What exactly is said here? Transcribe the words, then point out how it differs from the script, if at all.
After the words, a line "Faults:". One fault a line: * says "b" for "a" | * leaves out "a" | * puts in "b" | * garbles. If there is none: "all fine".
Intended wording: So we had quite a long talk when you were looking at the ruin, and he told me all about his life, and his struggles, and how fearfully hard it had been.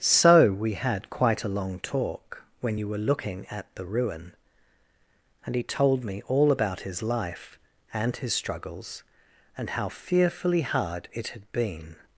So we had quite a long talk when you were looking at the ruin, and he told me all about his life, and his struggles, and how fearfully hard it had been.
Faults:
all fine